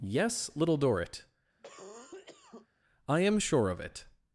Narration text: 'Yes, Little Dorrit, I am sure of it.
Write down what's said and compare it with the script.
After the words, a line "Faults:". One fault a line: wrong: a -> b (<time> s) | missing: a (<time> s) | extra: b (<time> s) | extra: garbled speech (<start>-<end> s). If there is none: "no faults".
'Yes, Little Dorrit, I am sure of it.
Faults:
no faults